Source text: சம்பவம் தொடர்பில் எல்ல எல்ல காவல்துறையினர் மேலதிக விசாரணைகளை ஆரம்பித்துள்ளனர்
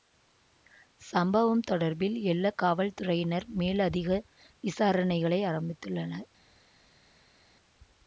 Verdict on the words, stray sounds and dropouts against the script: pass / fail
fail